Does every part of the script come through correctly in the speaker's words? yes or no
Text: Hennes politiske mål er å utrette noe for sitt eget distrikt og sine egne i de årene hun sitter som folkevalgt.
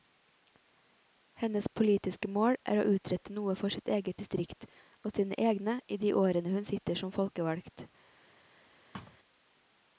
yes